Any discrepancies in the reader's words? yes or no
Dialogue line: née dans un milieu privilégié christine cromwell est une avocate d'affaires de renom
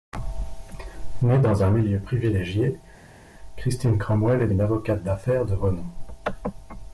no